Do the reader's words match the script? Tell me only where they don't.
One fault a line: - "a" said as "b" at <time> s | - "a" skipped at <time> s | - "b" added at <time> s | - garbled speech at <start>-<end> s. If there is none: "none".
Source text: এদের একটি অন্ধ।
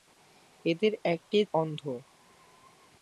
none